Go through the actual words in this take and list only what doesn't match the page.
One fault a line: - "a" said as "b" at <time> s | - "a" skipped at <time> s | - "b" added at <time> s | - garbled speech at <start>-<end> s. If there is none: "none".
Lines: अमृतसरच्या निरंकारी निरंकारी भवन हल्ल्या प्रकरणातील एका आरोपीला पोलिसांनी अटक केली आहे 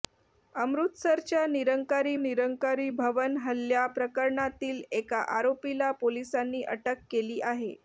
none